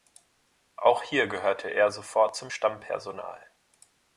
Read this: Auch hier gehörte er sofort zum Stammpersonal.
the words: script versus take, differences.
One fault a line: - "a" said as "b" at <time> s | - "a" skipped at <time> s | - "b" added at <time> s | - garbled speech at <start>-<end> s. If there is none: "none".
none